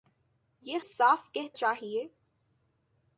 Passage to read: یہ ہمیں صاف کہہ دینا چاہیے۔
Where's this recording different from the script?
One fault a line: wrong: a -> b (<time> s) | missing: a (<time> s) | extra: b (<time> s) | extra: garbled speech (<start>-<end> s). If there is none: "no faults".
missing: ہمیں (0.8 s)
missing: دینا (1.6 s)